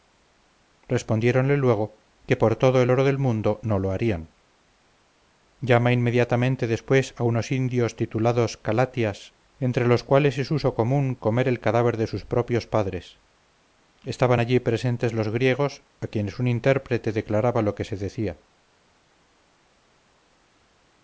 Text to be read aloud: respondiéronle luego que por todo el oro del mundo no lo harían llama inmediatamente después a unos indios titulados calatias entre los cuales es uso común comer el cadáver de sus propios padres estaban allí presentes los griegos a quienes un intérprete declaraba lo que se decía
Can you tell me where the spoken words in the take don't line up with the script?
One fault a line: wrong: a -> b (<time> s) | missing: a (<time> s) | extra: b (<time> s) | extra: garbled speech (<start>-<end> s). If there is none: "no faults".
no faults